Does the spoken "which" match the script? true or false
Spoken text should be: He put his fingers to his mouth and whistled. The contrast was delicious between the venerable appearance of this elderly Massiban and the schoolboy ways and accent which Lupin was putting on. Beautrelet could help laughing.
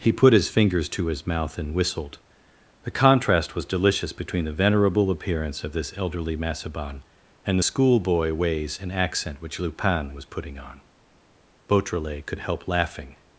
true